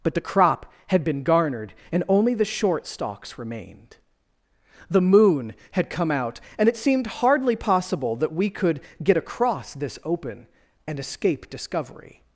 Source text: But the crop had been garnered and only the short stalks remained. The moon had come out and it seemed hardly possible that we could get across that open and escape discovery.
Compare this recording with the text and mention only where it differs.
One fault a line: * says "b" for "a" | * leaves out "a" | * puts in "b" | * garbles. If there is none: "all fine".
* says "this" for "that"